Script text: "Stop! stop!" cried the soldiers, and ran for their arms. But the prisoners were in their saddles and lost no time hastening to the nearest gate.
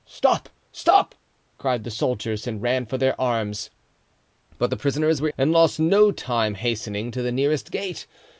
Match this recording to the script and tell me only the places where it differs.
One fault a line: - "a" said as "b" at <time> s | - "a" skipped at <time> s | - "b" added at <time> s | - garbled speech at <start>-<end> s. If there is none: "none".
- "in their saddles" skipped at 5.3 s